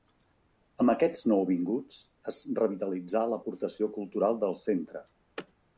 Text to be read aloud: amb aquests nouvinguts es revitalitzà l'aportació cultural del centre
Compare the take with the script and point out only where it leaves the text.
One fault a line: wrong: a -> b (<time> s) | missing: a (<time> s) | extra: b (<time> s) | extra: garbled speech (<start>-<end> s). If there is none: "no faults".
no faults